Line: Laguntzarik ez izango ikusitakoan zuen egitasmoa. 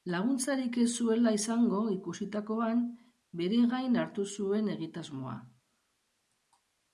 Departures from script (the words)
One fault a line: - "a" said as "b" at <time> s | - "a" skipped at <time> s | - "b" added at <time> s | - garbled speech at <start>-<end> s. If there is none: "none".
- "zuela" added at 1.0 s
- "bere gain hartu" added at 3.4 s